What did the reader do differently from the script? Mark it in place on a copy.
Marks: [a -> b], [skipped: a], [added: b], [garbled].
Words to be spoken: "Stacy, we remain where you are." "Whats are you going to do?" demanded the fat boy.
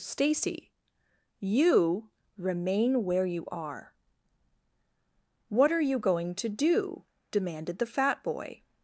"Stacy, [we -> you] remain where you are." ["Whats -> What] are you going to do?" demanded the fat boy.